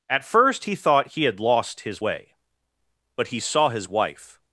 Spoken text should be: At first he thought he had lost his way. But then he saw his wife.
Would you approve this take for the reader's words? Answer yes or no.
no